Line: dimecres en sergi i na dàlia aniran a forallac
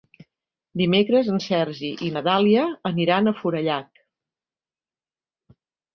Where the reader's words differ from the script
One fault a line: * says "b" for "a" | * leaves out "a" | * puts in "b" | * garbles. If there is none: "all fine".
all fine